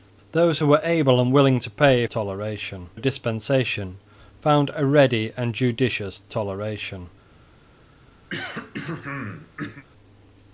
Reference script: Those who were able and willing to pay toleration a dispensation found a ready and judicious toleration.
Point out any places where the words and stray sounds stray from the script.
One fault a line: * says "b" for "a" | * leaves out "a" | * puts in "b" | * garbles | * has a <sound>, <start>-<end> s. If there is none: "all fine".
* has a throat clearing, 8.3-9.8 s